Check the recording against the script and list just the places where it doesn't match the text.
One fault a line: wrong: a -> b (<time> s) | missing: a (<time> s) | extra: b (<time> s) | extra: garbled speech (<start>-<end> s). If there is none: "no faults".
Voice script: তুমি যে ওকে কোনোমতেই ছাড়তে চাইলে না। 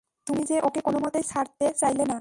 no faults